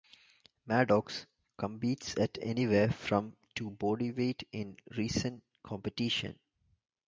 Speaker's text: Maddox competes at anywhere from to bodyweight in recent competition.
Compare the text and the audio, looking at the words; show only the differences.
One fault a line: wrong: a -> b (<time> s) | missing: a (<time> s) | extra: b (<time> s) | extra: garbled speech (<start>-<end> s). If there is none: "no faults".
no faults